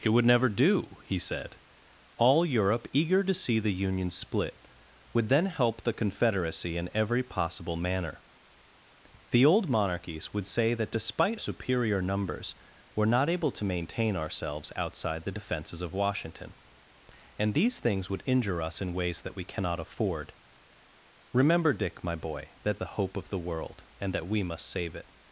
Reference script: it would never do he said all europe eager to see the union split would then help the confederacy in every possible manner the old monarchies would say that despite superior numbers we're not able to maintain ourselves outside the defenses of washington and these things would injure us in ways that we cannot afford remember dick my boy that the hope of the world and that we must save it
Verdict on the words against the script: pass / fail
pass